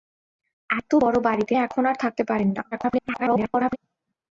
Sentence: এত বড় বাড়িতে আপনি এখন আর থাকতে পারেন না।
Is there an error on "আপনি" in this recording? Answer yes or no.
yes